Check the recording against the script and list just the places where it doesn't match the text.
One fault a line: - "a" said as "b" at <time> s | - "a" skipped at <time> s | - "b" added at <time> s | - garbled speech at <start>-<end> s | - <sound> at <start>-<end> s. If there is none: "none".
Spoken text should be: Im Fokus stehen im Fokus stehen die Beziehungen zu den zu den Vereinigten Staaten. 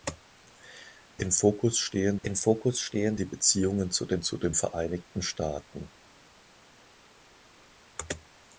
none